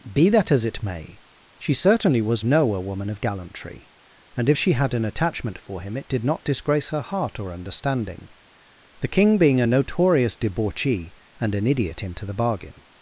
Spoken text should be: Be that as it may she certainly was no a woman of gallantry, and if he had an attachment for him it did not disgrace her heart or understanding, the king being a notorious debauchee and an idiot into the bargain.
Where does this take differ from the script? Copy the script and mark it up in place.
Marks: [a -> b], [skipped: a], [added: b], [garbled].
Be that as it may she certainly was no a woman of gallantry, and if [he -> she] had an attachment for him it did not disgrace her heart or understanding, the king being a notorious debauchee and an idiot into the bargain.